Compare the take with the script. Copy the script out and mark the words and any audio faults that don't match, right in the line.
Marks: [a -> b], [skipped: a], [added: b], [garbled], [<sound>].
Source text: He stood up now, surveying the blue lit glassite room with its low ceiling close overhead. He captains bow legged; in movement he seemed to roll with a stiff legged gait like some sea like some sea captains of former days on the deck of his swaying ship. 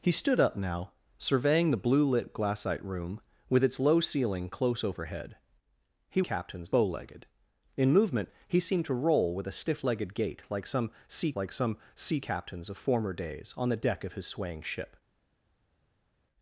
He stood up now, surveying the blue lit glassite room with its low ceiling close overhead. He captains bow legged; in movement he seemed to roll with a stiff legged gait like some sea like some sea captains of former days on the deck of his swaying ship.